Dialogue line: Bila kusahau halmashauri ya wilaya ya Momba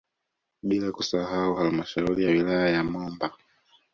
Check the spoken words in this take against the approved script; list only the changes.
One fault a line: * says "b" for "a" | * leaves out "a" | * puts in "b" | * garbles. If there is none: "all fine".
all fine